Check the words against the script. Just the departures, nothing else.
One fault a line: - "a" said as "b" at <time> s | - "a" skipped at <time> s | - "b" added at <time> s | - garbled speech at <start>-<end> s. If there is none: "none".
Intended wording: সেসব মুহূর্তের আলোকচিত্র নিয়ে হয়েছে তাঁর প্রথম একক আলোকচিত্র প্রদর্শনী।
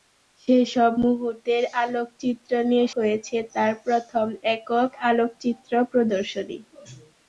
none